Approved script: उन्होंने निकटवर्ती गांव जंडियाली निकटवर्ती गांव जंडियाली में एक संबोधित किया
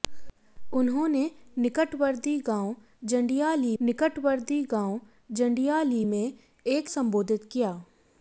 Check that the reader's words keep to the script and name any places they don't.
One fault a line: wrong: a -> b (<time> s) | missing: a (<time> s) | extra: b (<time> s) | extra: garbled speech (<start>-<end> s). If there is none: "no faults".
no faults